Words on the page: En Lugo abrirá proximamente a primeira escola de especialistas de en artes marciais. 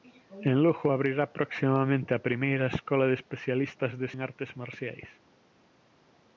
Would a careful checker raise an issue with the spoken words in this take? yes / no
no